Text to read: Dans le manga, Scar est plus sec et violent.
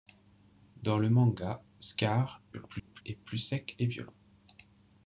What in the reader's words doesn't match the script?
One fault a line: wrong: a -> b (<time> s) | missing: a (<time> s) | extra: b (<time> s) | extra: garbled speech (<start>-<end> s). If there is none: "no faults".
extra: garbled speech (2.5-3.0 s)